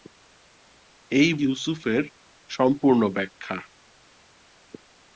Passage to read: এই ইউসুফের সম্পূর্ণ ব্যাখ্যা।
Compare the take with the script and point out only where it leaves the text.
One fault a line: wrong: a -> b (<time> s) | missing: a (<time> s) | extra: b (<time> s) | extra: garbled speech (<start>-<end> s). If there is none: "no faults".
no faults